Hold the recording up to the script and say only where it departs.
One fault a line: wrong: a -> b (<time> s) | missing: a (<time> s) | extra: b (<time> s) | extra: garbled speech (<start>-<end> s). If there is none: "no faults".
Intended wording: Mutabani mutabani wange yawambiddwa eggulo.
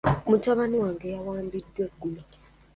missing: mutabani (0.8 s)